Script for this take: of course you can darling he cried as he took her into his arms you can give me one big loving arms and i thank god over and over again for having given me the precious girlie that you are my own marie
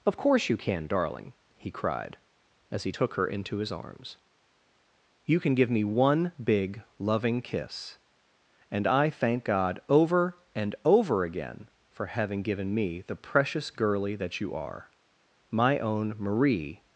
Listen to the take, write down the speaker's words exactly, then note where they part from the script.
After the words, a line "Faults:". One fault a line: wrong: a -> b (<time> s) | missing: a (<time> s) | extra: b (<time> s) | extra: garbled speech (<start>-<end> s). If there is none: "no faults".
of course you can darling he cried as he took her into his arms you can give me one big loving kiss and i thank god over and over again for having given me the precious girlie that you are my own marie
Faults:
wrong: arms -> kiss (7.4 s)